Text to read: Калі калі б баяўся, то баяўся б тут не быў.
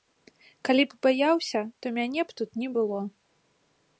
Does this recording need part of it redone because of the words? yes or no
yes